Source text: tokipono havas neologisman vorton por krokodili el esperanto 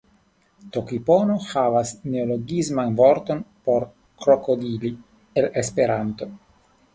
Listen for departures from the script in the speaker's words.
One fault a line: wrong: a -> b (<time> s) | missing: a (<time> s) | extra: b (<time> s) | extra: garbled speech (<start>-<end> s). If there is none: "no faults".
no faults